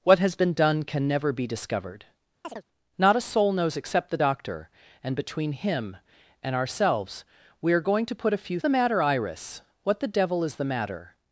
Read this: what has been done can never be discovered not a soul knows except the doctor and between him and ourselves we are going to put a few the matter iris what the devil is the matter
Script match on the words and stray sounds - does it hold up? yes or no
no